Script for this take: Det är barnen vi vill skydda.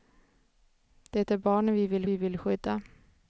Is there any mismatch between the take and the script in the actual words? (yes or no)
yes